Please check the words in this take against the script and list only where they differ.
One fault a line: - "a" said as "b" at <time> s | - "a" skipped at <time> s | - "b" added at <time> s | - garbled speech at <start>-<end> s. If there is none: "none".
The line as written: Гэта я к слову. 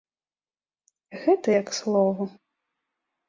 none